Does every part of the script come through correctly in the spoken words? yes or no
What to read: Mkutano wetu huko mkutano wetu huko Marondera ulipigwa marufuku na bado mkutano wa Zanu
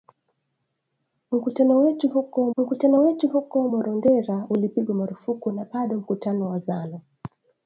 yes